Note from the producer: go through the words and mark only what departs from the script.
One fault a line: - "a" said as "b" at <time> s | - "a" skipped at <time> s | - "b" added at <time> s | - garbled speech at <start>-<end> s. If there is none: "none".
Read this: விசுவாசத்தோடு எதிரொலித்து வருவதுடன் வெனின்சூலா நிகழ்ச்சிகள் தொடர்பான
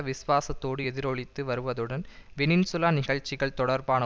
none